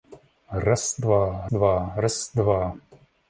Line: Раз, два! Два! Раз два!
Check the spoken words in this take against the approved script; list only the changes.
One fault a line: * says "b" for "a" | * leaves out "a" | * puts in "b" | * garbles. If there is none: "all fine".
all fine